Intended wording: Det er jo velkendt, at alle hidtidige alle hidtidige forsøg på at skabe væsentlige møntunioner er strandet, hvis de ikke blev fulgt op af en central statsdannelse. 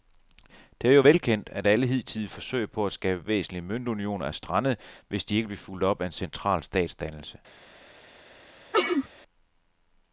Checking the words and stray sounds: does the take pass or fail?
fail